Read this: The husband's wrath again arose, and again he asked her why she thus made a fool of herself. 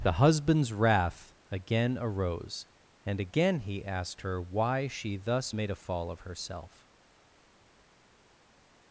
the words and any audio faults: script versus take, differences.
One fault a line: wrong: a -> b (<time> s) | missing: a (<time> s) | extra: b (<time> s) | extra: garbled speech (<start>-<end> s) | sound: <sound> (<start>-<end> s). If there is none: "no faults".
wrong: fool -> fall (5.8 s)